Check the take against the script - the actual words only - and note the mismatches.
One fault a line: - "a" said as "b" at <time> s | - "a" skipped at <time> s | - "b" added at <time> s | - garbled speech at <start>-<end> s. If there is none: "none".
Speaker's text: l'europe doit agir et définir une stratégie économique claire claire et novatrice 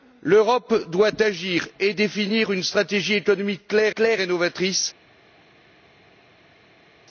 none